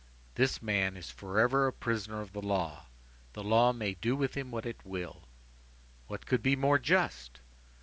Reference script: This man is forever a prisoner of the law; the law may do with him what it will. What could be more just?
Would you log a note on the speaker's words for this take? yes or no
no